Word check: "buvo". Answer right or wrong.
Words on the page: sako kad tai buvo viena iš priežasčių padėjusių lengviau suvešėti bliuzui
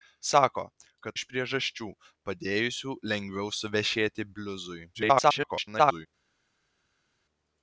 wrong